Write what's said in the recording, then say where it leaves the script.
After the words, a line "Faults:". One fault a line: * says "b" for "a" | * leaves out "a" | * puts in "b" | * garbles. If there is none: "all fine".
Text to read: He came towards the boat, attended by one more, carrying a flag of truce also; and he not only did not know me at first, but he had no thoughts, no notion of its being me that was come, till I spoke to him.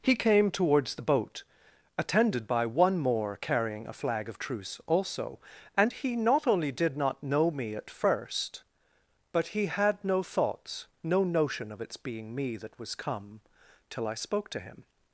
He came towards the boat, attended by one more, carrying a flag of truce also; and he not only did not know me at first, but he had no thoughts, no notion of its being me that was come, till I spoke to him.
Faults:
all fine